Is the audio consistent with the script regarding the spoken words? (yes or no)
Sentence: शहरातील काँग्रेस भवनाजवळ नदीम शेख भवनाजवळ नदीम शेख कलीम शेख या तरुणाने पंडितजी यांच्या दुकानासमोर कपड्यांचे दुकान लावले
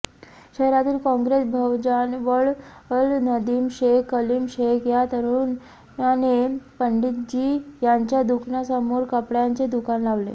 no